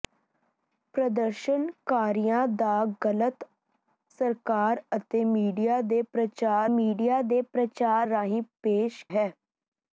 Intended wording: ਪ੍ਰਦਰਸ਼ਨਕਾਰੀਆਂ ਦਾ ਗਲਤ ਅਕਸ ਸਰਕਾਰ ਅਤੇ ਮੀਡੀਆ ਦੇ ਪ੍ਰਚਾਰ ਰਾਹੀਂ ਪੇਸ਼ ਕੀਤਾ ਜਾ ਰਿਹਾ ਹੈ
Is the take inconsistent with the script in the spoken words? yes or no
yes